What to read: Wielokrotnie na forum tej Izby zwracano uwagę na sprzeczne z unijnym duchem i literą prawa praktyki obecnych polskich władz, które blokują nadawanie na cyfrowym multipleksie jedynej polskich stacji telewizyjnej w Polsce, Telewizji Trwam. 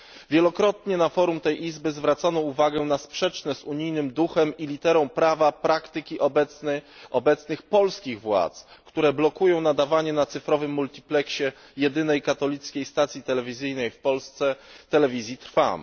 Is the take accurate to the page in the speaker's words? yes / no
no